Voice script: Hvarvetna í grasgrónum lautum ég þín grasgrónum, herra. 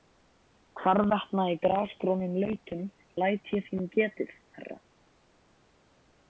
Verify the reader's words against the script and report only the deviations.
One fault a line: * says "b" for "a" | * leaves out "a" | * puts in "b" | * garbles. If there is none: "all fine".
* puts in "læt"
* says "getið" for "grasgrónum"